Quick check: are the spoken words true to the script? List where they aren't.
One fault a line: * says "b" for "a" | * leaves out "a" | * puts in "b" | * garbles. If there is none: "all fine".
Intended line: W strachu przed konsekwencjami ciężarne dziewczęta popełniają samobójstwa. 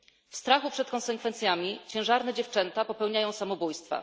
all fine